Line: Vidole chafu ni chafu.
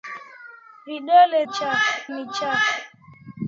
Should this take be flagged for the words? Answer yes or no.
no